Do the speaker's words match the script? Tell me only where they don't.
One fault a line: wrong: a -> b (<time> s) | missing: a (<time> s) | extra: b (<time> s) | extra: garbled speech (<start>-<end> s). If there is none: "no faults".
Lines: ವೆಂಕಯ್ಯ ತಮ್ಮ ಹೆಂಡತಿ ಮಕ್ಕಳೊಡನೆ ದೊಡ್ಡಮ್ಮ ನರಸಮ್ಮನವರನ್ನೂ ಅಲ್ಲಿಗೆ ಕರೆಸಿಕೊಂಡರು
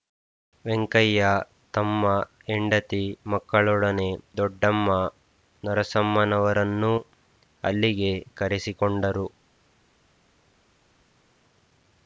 no faults